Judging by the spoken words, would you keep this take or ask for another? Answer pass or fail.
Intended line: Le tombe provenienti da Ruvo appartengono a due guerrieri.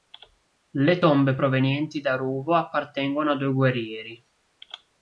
pass